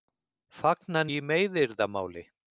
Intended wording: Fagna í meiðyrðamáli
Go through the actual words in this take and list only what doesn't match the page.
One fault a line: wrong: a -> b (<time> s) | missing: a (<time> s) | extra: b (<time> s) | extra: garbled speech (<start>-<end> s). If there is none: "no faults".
no faults